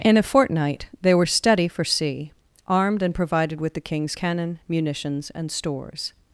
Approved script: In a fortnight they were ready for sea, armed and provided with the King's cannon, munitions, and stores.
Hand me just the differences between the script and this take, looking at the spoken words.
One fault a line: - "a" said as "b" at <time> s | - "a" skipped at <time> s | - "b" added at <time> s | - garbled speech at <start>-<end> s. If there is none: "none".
- "ready" said as "steady" at 1.3 s